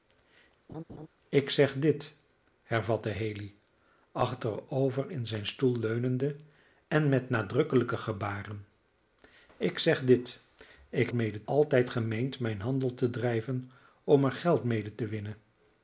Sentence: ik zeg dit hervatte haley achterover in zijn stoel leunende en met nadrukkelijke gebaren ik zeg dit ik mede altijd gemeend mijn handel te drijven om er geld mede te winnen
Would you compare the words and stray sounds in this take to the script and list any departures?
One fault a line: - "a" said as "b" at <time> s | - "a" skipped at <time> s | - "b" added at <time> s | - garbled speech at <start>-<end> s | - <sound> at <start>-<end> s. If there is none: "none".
- laugh at 0.7-1.1 s